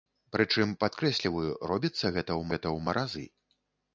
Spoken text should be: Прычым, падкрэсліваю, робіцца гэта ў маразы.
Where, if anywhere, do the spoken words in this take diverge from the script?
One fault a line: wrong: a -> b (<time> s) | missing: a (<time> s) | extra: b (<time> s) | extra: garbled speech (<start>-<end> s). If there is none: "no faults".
extra: гэта ў (2.5 s)